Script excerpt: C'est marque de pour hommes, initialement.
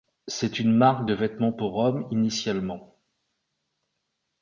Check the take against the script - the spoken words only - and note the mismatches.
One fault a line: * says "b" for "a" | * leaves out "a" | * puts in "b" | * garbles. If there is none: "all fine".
* puts in "une"
* puts in "vêtements"